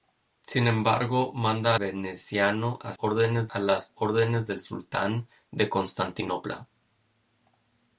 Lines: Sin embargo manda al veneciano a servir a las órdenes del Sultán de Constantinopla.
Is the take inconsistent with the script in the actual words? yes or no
yes